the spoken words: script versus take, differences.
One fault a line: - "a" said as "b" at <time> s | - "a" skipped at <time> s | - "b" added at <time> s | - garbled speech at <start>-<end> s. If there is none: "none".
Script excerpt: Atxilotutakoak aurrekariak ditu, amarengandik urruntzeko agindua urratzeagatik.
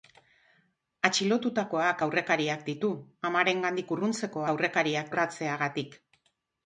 - "agindua" said as "aurrekariak" at 4.5 s